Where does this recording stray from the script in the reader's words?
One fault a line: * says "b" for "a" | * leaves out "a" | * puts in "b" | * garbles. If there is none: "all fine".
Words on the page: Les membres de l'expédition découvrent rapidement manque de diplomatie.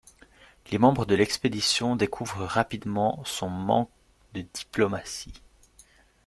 * puts in "son"